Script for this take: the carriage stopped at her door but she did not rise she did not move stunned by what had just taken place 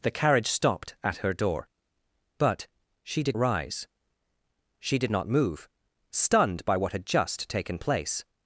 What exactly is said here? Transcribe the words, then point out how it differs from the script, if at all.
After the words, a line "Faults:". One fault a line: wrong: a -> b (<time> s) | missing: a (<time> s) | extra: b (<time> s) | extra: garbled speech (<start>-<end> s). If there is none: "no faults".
the carriage stopped at her door but she did rise she did not move stunned by what had just taken place
Faults:
missing: not (3.4 s)